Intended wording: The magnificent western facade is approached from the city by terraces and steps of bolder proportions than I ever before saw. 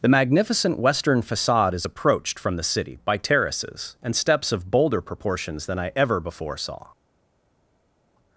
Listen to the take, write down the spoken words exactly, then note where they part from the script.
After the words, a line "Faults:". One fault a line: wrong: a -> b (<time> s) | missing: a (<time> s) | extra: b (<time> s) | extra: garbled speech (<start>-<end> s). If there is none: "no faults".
The magnificent western facade is approached from the city by terraces and steps of bolder proportions than I ever before saw.
Faults:
no faults